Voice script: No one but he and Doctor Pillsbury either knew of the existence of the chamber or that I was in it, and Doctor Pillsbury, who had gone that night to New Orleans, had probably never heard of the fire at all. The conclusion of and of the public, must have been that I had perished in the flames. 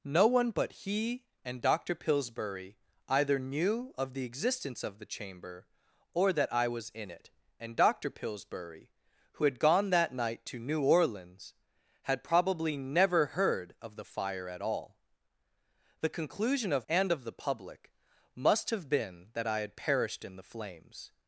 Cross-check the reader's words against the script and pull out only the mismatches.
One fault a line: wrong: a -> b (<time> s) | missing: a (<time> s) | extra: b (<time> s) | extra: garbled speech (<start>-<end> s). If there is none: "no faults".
no faults